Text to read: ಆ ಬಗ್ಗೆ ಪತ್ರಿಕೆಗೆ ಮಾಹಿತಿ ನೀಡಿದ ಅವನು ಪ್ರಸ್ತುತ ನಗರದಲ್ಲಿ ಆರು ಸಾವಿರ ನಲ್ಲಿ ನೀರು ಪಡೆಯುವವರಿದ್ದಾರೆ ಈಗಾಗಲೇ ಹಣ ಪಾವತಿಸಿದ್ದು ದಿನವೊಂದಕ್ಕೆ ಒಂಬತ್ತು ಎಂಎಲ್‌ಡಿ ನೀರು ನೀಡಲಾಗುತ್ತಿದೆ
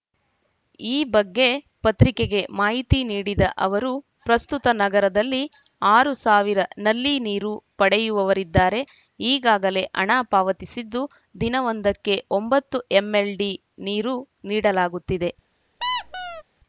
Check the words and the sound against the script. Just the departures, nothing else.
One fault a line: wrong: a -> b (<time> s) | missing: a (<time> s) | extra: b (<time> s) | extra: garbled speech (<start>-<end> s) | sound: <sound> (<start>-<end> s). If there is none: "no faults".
wrong: ಆ -> ಈ (0.8 s)
wrong: ಅವನು -> ಅವರು (3.6 s)
sound: squeak (15.8-16.4 s)